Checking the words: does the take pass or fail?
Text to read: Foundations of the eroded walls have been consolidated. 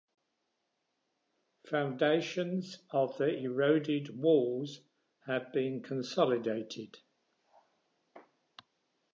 pass